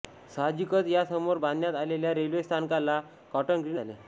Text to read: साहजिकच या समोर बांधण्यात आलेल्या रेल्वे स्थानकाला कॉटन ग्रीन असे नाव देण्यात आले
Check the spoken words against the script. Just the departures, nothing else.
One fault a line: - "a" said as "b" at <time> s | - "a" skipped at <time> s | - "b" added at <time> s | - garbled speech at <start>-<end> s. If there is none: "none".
- "असे नाव देण्यात" skipped at 3.8 s